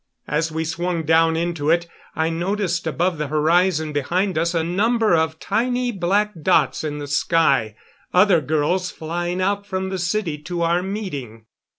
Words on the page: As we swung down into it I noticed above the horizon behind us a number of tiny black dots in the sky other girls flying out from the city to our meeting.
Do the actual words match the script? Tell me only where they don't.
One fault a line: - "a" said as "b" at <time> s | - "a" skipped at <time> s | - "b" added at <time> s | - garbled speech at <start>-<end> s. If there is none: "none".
none